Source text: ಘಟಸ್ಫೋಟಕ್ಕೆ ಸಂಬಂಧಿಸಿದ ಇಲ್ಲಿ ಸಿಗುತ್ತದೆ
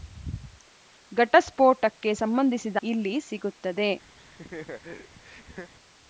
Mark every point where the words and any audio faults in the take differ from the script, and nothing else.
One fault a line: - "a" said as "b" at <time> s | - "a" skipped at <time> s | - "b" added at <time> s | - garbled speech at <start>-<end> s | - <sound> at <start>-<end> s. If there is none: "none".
- laugh at 4.2-5.7 s